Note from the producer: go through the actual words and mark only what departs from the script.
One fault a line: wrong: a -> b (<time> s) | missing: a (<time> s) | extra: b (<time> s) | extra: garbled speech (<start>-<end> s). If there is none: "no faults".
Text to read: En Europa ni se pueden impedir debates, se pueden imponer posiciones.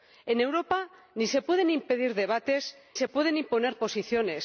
no faults